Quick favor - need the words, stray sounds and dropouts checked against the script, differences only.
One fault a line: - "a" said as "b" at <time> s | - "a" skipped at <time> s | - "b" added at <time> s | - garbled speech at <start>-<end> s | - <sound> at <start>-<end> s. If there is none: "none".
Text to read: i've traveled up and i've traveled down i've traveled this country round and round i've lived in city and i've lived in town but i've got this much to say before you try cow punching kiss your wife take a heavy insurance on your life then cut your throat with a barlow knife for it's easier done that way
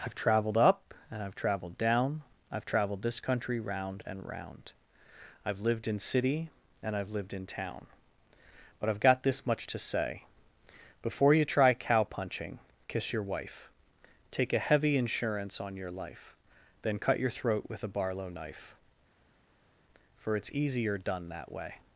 none